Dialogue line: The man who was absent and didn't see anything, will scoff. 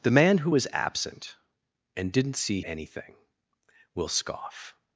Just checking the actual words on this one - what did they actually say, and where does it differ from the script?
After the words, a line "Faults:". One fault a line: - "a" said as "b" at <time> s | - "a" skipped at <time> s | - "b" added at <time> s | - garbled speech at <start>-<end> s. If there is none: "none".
The man who was absent and didn't see anything, will scoff.
Faults:
none